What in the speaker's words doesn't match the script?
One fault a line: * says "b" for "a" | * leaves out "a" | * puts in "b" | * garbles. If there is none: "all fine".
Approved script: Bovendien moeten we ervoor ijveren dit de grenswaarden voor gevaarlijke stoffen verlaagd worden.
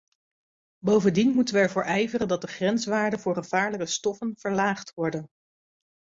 * says "dat" for "dit"